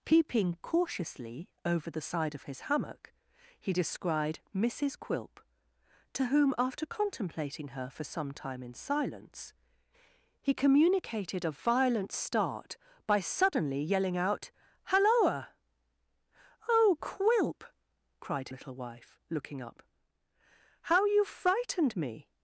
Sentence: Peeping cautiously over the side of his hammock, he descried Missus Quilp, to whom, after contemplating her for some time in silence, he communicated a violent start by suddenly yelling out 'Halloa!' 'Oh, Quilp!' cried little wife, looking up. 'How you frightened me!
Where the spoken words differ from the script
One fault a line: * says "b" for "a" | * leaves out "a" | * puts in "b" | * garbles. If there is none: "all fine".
all fine